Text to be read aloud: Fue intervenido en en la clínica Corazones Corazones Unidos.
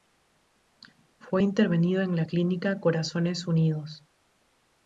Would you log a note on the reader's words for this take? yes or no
yes